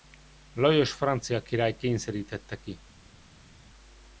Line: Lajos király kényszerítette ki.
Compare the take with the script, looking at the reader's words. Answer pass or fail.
fail